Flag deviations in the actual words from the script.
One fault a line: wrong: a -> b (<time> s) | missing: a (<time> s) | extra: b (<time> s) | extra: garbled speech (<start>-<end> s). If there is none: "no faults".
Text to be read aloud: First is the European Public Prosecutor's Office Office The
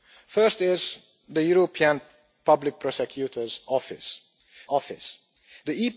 no faults